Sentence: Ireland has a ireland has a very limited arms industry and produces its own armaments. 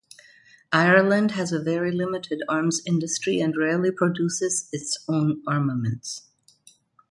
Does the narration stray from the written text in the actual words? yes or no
yes